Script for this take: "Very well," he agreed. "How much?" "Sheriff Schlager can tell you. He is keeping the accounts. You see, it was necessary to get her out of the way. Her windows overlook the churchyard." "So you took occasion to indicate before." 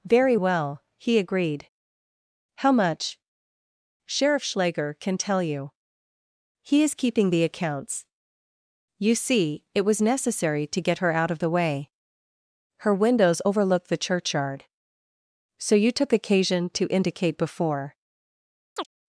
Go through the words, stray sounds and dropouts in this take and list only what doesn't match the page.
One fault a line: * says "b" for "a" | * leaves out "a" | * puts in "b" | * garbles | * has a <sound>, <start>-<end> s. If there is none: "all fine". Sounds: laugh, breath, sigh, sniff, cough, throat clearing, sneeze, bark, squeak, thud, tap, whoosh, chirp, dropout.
* has a chirp, 18.8-18.9 s